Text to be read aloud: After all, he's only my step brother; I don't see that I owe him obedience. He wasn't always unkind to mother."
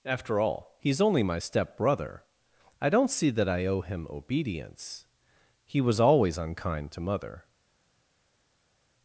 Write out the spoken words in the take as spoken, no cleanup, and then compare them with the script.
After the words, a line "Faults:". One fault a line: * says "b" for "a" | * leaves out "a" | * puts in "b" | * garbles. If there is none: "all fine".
After all, he's only my step brother; I don't see that I owe him obedience. He was always unkind to mother."
Faults:
* says "was" for "wasn't"